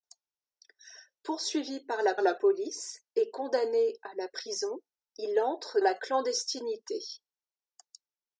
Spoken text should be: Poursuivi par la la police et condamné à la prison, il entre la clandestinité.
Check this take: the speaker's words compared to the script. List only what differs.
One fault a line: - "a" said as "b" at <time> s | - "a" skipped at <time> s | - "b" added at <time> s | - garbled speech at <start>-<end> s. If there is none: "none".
none